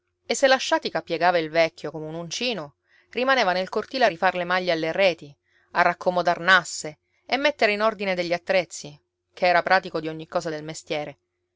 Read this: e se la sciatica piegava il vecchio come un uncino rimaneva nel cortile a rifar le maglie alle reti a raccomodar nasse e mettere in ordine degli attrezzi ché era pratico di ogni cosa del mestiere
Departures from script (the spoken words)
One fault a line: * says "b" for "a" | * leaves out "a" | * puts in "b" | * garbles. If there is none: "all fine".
all fine